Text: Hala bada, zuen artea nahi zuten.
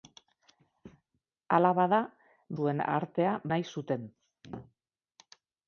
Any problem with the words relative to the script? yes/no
no